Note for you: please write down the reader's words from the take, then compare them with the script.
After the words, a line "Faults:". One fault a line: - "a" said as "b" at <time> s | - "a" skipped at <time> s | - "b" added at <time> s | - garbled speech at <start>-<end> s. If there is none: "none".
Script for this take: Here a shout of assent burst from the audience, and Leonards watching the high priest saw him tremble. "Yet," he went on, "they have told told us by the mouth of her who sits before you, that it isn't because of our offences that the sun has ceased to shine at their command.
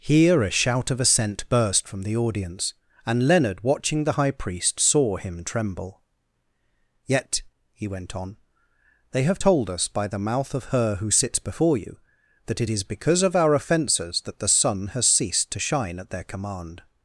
Here a shout of assent burst from the audience, and Leonard watching the high priest saw him tremble. "Yet," he went on, "they have told us by the mouth of her who sits before you, that it is because of our offences that the sun has ceased to shine at their command.
Faults:
- "Leonards" said as "Leonard" at 3.3 s
- "told" skipped at 9.7 s
- "isn't" said as "is" at 12.7 s